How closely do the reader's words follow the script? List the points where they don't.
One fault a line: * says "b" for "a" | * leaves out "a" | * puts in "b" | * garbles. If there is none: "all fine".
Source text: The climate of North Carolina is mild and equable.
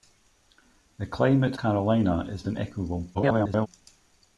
* leaves out "of North"
* leaves out "mild"
* garbles